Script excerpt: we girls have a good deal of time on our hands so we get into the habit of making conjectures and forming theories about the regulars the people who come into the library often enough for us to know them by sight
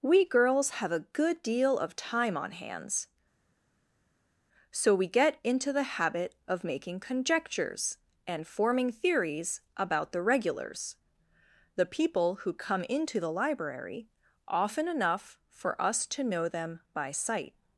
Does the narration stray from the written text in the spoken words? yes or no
yes